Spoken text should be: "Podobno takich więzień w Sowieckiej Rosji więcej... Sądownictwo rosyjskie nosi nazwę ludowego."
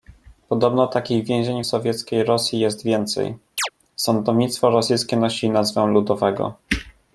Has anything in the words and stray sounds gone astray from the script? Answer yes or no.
yes